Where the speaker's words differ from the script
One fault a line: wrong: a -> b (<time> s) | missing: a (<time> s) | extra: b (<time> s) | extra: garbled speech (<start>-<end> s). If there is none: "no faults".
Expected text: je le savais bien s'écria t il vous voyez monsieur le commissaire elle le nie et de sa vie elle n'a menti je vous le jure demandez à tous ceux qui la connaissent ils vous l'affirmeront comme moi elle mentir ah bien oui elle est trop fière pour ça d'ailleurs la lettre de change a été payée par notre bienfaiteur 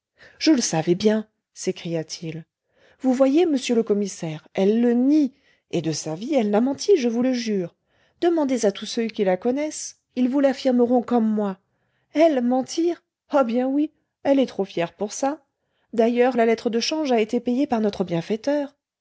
no faults